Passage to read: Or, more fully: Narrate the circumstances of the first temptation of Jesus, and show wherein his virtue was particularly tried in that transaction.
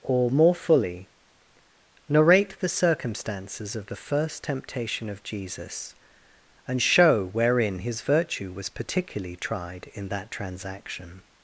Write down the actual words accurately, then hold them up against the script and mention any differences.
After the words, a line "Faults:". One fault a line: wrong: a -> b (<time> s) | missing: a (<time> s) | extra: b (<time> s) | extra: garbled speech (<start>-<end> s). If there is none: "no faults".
Or, more fully: Narrate the circumstances of the first temptation of Jesus, and show wherein his virtue was particularly tried in that transaction.
Faults:
no faults